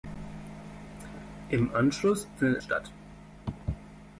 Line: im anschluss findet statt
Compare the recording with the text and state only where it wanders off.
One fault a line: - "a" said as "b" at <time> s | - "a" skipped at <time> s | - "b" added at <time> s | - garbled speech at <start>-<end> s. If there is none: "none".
none